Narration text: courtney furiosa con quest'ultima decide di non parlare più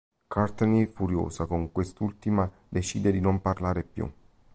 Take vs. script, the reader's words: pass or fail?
pass